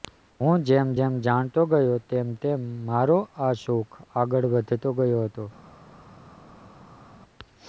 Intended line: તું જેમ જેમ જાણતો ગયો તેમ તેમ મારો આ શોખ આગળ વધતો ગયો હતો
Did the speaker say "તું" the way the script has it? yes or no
no